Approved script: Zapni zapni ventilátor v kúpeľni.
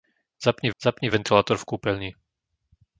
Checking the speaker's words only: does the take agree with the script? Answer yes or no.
yes